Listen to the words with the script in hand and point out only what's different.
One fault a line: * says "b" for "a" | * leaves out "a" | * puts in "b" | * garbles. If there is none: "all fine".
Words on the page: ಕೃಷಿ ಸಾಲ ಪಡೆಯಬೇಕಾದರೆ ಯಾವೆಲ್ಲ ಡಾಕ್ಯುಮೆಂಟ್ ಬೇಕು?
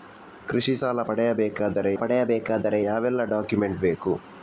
* puts in "ಪಡೆಯಬೇಕಾದರೆ"